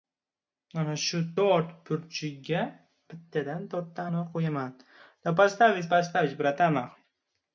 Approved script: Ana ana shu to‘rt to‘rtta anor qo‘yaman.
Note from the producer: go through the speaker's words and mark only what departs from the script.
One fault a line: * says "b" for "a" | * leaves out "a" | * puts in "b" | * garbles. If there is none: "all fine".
* leaves out "ana"
* puts in "burchiga bittadan"